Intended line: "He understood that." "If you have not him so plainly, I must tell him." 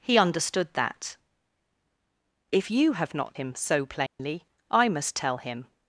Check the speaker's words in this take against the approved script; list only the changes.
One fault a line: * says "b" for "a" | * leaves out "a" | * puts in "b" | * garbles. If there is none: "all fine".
all fine